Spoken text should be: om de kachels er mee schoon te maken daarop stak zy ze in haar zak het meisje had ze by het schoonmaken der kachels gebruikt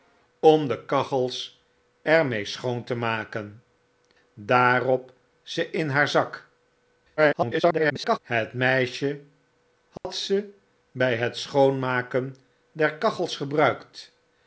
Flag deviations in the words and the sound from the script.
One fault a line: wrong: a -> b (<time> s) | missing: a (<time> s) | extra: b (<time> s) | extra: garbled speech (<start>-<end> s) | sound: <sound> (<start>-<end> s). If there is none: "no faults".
missing: stak zy (5.1 s)
extra: garbled speech (7.2-8.2 s)
sound: dropout (10.0-10.0 s)